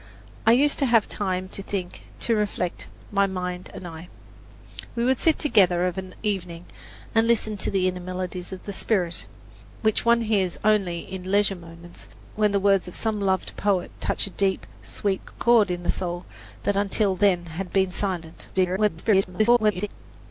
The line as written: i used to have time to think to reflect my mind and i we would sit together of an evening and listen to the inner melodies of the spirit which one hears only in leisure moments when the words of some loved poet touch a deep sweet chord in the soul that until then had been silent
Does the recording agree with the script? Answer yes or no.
no